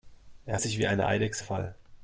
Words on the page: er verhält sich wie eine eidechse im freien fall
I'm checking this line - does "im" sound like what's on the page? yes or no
no